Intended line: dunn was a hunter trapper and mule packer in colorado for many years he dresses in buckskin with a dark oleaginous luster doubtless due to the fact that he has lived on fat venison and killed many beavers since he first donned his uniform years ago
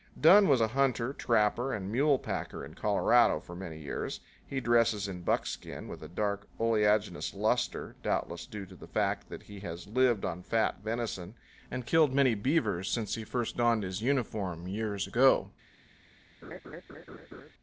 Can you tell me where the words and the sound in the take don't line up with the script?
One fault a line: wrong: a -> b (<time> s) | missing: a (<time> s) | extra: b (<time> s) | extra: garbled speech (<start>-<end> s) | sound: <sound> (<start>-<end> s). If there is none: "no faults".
sound: laugh (16.4-17.5 s)